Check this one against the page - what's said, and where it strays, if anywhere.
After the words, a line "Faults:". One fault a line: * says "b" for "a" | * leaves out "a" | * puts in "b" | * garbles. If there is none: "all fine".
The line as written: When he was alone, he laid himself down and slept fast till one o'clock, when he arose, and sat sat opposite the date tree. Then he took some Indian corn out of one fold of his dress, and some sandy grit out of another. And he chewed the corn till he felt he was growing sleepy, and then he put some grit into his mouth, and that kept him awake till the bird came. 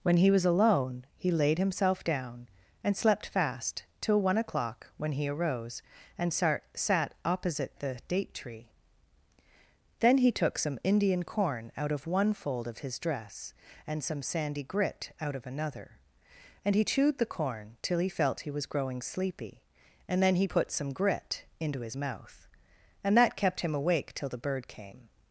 When he was alone, he laid himself down and slept fast till one o'clock, when he arose, and sat sat opposite the date tree. Then he took some Indian corn out of one fold of his dress, and some sandy grit out of another. And he chewed the corn till he felt he was growing sleepy, and then he put some grit into his mouth, and that kept him awake till the bird came.
Faults:
all fine